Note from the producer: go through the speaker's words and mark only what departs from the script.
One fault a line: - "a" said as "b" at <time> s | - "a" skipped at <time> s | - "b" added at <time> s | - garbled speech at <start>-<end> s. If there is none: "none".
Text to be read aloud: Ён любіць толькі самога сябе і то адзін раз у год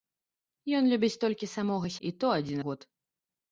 - "сябе" skipped at 1.9 s
- "раз" skipped at 2.6 s